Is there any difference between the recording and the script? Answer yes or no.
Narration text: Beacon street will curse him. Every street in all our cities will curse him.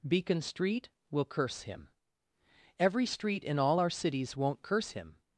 yes